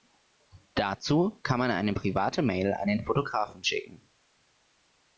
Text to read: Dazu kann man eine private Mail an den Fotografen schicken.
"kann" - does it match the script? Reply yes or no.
yes